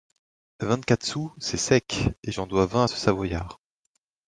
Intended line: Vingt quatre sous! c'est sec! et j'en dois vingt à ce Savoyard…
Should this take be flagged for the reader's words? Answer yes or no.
no